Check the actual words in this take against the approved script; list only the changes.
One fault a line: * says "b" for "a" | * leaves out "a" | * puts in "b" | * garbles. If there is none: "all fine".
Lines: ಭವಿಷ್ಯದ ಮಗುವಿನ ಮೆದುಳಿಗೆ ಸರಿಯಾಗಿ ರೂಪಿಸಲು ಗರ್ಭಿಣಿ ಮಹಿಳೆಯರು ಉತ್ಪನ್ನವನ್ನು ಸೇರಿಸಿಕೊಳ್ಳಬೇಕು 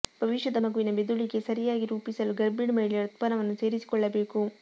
all fine